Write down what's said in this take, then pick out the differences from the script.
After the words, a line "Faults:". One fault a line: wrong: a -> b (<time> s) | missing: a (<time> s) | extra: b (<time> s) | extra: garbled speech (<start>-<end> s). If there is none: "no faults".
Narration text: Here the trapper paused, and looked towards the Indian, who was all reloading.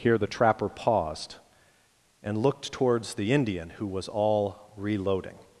Here the trapper paused, and looked towards the Indian, who was all reloading.
Faults:
no faults